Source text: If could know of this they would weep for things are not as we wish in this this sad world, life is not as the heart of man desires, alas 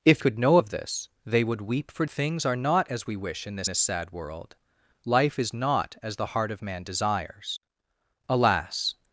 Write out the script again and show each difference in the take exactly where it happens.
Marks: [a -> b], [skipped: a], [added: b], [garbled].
If could know of this they would weep for things are not as we wish in this this sad world, life is not as the heart of man desires, alas